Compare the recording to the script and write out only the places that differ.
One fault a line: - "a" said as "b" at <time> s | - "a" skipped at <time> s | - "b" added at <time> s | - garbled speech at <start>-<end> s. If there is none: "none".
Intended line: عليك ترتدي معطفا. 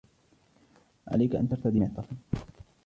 - "أن" added at 1.4 s